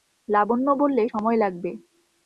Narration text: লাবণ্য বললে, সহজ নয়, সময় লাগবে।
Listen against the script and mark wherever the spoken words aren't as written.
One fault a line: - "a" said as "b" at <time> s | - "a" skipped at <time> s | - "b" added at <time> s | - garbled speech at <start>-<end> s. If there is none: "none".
- "সহজ নয়" skipped at 1.0 s